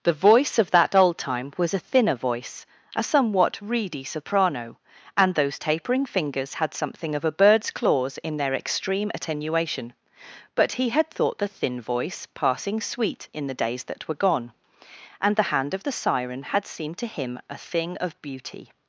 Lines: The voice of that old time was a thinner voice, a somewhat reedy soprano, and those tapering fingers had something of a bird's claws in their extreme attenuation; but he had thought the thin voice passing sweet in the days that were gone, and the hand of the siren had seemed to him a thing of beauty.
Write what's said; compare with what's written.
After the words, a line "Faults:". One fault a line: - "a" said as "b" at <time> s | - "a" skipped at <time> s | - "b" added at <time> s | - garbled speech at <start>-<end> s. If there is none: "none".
The voice of that old time was a thinner voice, a somewhat reedy soprano, and those tapering fingers had something of a bird's claws in their extreme attenuation; but he had thought the thin voice passing sweet in the days that were gone, and the hand of the siren had seemed to him a thing of beauty.
Faults:
none